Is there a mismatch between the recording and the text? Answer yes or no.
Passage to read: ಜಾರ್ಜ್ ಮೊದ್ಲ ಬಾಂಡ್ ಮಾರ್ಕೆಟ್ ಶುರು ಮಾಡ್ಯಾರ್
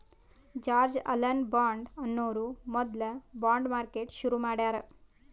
yes